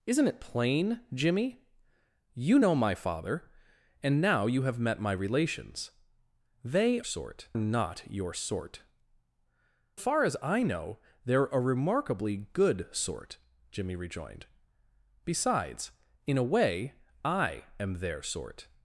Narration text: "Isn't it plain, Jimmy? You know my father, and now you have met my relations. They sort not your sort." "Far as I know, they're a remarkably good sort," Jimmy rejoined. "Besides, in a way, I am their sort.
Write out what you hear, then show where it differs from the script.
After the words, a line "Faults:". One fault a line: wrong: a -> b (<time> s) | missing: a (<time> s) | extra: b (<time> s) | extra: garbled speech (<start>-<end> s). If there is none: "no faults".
"Isn't it plain, Jimmy? You know my father, and now you have met my relations. They sort not your sort." "Far as I know, they're a remarkably good sort," Jimmy rejoined. "Besides, in a way, I am their sort.
Faults:
no faults